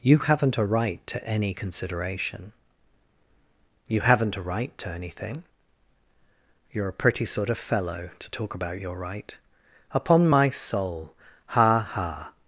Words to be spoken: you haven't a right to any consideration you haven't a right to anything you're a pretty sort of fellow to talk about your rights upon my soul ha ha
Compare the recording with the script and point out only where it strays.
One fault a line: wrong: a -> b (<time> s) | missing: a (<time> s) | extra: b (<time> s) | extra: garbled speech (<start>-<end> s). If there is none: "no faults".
wrong: rights -> right (9.0 s)